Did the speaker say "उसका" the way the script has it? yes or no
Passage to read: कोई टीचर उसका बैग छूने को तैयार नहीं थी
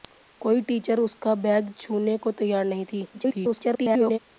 yes